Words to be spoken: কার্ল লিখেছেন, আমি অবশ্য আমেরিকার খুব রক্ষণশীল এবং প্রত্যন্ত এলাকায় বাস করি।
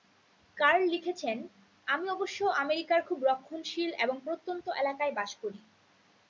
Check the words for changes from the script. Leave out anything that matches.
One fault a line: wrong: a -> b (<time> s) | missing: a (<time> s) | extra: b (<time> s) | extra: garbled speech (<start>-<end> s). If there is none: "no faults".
no faults